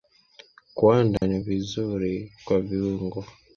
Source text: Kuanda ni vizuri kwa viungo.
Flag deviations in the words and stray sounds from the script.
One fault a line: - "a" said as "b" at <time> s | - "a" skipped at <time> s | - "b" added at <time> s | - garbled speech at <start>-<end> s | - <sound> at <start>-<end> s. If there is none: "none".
- dropout at 1.2-1.2 s